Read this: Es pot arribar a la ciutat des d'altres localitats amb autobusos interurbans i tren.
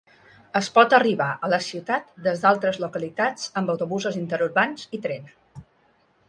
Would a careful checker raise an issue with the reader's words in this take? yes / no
no